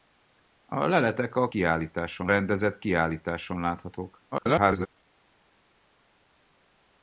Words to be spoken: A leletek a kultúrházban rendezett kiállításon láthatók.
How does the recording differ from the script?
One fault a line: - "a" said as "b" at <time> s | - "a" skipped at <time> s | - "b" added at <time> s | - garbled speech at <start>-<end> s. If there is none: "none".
- "kultúrházban" said as "kiállításon" at 1.5 s
- garbled speech at 4.3-4.9 s